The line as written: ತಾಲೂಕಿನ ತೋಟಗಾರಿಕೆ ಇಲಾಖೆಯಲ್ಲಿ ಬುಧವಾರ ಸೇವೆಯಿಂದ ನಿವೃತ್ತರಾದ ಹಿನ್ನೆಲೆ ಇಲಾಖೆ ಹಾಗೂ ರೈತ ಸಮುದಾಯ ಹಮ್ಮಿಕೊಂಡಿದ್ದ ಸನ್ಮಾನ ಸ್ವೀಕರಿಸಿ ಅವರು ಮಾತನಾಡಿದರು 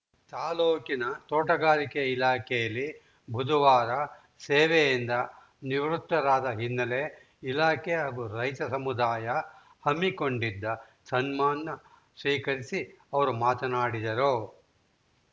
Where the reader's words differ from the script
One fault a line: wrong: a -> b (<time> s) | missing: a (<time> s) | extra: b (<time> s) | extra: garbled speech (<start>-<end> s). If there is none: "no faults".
no faults